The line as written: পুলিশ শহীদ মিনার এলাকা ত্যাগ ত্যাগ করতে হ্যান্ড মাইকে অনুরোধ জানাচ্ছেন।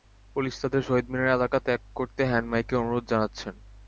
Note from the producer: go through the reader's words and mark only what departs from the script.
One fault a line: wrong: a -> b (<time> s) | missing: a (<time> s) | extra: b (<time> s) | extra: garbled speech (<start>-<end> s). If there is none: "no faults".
extra: তাঁদের (0.6 s)
missing: ত্যাগ (1.8 s)